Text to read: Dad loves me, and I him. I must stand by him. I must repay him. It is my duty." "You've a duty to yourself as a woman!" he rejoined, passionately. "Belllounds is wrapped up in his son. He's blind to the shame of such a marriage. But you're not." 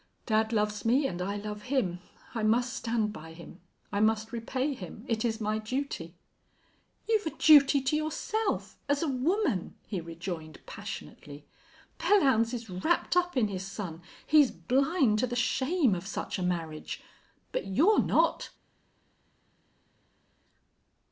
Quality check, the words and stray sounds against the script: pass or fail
fail